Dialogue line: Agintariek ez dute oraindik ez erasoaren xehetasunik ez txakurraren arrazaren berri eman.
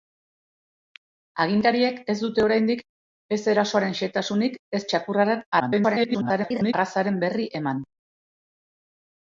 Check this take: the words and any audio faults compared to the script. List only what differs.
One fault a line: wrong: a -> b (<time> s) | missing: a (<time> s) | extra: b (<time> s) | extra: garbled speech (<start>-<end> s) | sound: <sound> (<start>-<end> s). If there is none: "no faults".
extra: garbled speech (5.6-6.7 s)